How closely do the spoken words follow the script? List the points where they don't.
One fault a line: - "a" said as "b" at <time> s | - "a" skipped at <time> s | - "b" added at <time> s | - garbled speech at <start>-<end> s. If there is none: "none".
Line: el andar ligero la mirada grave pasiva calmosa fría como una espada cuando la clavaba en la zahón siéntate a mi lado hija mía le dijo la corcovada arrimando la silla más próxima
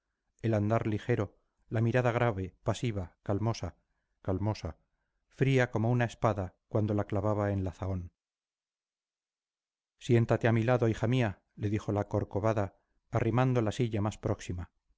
- "calmosa" added at 4.2 s